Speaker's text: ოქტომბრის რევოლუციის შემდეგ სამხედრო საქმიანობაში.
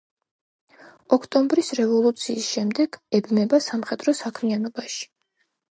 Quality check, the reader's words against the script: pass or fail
fail